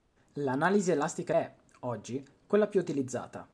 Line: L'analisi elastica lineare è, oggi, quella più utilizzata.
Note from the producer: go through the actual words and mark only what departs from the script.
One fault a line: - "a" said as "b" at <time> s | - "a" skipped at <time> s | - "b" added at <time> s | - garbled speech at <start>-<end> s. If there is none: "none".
- "lineare" skipped at 1.3 s